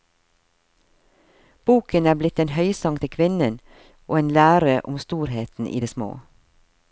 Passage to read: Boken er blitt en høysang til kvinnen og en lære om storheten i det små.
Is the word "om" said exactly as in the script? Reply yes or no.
yes